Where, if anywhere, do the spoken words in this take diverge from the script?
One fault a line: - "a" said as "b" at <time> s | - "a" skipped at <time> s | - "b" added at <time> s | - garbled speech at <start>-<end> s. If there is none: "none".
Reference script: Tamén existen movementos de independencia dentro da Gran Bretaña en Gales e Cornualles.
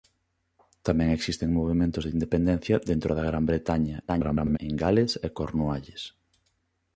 - garbled speech at 4.1-4.6 s